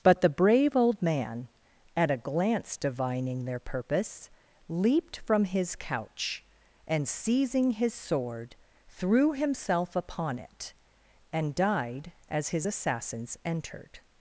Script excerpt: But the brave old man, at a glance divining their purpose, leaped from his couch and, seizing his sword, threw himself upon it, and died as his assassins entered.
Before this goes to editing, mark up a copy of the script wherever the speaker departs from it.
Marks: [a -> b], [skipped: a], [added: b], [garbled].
But the brave old man, at a glance divining their purpose, leaped from his couch and, seizing his sword, threw himself upon it, and died as his assassins entered.